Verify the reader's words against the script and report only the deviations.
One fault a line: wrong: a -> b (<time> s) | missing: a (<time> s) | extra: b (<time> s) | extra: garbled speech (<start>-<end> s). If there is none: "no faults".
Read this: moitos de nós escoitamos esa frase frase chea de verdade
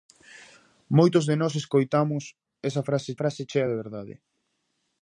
no faults